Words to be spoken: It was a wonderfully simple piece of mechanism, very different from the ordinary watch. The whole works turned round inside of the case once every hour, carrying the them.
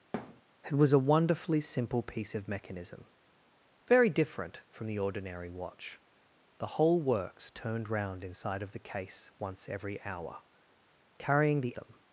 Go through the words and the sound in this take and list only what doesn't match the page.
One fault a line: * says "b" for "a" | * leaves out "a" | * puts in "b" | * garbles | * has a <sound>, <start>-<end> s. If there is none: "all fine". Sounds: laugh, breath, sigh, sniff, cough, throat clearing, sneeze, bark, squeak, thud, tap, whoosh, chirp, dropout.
* has a thud, 0.1-0.4 s